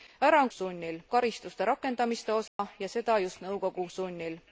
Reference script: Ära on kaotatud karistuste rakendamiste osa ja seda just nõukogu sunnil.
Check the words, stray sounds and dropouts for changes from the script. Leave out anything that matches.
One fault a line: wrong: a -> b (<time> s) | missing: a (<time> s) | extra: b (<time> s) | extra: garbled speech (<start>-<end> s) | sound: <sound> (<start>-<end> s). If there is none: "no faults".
wrong: kaotatud -> sunnil (0.5 s)
sound: dropout (2.5-2.6 s)